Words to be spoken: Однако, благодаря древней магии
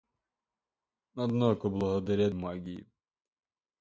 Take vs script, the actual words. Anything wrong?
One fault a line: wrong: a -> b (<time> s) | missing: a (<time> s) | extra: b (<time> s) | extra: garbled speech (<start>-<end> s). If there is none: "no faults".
missing: древней (2.3 s)